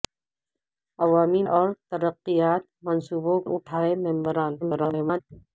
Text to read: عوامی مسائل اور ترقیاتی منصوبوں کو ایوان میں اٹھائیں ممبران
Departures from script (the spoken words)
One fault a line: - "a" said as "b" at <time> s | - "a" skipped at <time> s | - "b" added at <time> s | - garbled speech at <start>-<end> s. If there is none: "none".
- "مسائل" skipped at 1.4 s
- "کو ایوان میں" skipped at 3.4 s
- garbled speech at 4.6-5.2 s